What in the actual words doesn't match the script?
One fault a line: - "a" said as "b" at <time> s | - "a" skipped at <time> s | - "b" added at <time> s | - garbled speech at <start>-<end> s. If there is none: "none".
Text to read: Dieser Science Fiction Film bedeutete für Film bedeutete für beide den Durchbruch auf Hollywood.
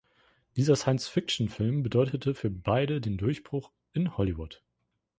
- "Film bedeutete für" skipped at 2.5 s
- "auf" said as "in" at 3.9 s